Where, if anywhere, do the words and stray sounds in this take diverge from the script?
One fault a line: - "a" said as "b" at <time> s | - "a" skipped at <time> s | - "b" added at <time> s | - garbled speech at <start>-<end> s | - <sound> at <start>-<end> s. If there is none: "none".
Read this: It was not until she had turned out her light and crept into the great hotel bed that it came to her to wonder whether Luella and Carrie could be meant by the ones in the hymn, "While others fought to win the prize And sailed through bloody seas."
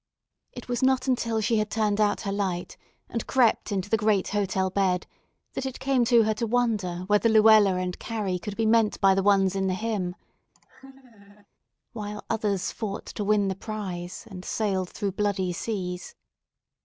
- laugh at 10.5-11.5 s